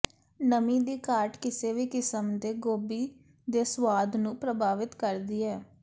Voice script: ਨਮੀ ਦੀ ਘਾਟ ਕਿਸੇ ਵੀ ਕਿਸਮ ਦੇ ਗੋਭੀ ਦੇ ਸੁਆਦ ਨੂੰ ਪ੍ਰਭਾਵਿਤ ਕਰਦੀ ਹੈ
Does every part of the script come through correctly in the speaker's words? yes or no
yes